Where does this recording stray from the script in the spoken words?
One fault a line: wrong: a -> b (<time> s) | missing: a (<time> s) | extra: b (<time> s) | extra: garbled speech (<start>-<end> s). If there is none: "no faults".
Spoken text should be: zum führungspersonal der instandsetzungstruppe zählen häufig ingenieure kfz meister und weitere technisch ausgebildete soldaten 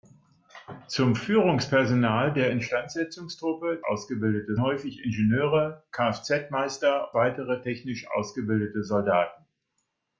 wrong: zählen -> ausgebildete (3.8 s)
missing: und (7.1 s)